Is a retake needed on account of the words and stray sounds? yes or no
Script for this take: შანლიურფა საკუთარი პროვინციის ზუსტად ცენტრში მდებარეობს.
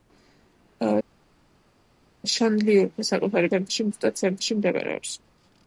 yes